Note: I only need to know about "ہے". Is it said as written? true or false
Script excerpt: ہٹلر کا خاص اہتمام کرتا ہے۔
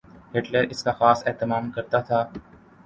false